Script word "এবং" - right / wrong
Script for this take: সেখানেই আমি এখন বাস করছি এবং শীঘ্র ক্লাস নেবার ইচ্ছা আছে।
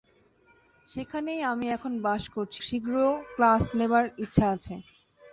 wrong